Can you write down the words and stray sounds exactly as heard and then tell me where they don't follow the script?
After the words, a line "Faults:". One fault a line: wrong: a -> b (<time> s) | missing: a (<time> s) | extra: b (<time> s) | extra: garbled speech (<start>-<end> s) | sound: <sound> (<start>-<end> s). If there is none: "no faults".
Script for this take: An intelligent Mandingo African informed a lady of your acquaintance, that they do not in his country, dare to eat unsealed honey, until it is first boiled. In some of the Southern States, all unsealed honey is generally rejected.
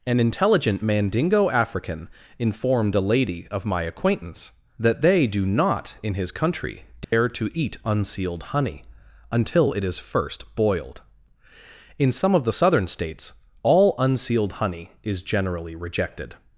An intelligent Mandingo African informed a lady of my acquaintance, that they do not in his country, dare to eat unsealed honey, until it is first boiled. In some of the Southern States, all unsealed honey is generally rejected.
Faults:
wrong: your -> my (3.6 s)
sound: dropout (7.0-7.1 s)